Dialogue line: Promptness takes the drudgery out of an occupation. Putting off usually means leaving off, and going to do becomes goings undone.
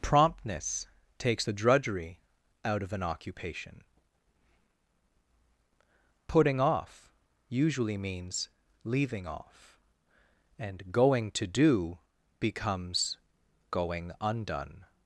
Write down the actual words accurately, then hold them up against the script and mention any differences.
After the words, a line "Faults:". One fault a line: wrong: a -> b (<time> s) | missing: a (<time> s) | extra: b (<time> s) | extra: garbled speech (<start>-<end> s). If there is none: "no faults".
Promptness takes the drudgery out of an occupation. Putting off usually means leaving off, and going to do becomes going undone.
Faults:
wrong: goings -> going (13.7 s)